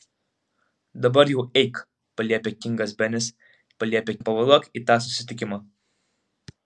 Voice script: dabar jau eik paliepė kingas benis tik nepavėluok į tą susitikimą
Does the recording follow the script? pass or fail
fail